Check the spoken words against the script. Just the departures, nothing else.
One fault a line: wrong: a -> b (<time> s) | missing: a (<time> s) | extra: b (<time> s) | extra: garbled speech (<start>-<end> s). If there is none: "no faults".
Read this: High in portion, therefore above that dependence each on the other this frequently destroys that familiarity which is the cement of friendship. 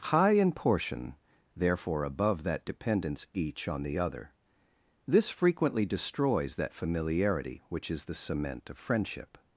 no faults